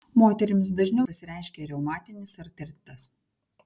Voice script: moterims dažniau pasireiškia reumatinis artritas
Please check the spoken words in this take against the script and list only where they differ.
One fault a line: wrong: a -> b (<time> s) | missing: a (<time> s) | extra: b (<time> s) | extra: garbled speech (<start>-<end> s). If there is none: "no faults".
no faults